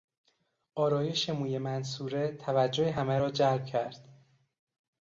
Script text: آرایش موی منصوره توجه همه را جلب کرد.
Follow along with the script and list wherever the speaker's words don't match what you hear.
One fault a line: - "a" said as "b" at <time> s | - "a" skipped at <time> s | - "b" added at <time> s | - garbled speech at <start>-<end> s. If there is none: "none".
none